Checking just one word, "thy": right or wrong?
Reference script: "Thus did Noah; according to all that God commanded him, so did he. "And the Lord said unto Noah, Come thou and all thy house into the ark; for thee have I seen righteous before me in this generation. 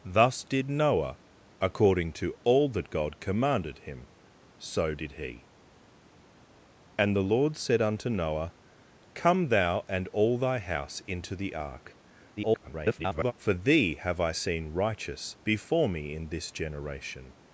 right